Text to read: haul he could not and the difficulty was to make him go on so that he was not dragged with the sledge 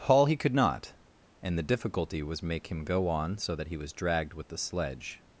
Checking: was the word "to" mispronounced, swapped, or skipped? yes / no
yes